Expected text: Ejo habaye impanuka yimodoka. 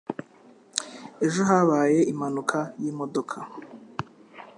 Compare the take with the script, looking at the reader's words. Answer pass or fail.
pass